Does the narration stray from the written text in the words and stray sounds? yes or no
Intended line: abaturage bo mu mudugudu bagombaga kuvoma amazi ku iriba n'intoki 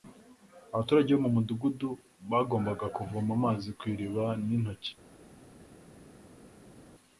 no